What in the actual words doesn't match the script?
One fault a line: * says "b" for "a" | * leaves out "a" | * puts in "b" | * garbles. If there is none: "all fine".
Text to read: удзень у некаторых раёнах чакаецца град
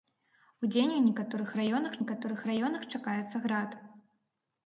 * puts in "некаторых раёнах"